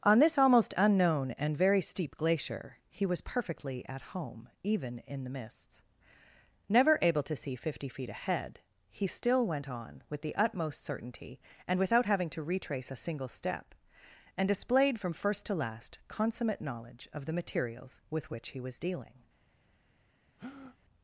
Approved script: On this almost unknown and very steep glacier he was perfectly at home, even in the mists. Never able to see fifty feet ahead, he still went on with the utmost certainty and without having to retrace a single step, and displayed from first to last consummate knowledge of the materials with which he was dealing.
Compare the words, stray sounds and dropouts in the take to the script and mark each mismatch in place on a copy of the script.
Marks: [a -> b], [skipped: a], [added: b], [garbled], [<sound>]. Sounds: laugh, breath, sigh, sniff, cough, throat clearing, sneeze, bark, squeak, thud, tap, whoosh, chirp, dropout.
On this almost unknown and very steep glacier he was perfectly at home, even in the mists. Never able to see fifty feet ahead, he still went on with the utmost certainty and without having to retrace a single step, and displayed from first to last consummate knowledge of the materials with which he was dealing. [breath]